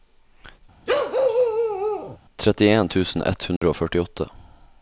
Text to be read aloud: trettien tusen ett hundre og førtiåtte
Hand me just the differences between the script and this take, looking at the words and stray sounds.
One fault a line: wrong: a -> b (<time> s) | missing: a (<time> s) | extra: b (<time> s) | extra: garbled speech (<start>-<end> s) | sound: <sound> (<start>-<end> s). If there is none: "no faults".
sound: bark (0.9-2.2 s)
sound: dropout (3.6-3.6 s)